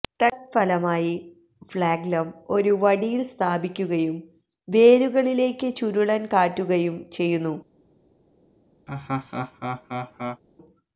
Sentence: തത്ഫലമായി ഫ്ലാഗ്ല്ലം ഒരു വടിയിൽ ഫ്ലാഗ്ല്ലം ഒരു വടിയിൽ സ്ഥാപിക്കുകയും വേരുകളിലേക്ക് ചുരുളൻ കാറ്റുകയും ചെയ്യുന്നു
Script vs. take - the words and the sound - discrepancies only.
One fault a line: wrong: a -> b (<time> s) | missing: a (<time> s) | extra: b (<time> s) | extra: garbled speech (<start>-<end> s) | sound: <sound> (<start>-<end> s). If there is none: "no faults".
missing: ഫ്ലാഗ്ല്ലം ഒരു വടിയിൽ (3.2 s)
sound: laugh (8.9-10.4 s)